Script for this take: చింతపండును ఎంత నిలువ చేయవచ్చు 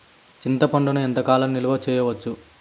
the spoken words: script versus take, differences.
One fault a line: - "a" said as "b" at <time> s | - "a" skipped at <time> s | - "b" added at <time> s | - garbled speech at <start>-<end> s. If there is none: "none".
- "కాలం" added at 1.2 s